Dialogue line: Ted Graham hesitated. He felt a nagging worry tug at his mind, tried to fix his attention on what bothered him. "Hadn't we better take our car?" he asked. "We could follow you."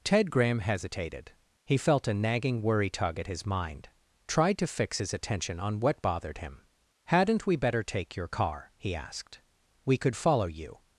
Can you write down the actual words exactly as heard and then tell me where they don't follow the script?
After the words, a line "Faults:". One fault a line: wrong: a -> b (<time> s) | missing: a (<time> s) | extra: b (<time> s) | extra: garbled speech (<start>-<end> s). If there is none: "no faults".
Ted Graham hesitated. He felt a nagging worry tug at his mind, tried to fix his attention on what bothered him. "Hadn't we better take your car?" he asked. "We could follow you."
Faults:
wrong: our -> your (8.2 s)